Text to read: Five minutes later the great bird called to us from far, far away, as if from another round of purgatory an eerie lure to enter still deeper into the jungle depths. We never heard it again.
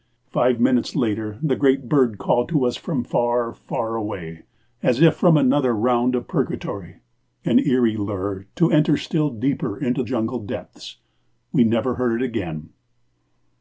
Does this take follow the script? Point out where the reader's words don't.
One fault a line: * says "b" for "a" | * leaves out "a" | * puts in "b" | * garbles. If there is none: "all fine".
* leaves out "the"